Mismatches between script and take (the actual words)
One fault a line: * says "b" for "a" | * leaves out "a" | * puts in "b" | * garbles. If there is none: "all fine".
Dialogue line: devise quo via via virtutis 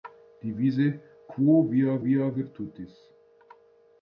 all fine